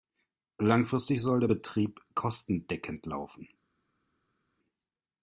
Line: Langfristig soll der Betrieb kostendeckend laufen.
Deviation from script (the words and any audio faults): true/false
false